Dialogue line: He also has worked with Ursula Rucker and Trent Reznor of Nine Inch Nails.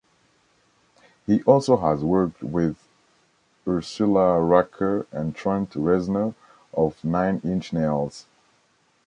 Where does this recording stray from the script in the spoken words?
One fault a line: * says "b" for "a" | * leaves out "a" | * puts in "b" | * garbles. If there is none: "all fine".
all fine